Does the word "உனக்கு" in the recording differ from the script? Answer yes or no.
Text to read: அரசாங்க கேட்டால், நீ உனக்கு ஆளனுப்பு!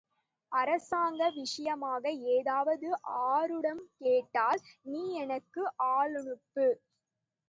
yes